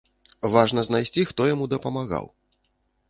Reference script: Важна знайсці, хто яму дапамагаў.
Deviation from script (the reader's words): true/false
false